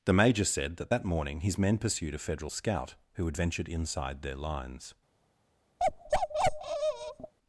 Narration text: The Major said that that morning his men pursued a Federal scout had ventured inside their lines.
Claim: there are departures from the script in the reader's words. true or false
true